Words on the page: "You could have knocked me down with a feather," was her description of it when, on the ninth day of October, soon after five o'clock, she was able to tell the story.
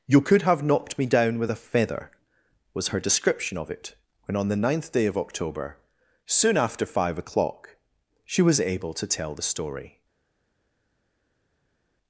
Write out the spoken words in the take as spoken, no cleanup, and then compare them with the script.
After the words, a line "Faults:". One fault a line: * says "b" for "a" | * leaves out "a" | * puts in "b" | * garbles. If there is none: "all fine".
"You could have knocked me down with a feather," was her description of it when, on the ninth day of October, soon after five o'clock, she was able to tell the story.
Faults:
all fine